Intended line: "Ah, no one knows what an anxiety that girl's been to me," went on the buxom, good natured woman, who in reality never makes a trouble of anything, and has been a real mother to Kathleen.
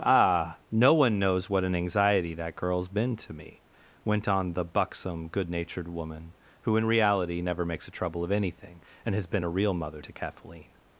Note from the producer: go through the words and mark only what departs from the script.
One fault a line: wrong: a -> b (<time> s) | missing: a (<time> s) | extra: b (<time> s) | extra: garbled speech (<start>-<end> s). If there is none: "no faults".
no faults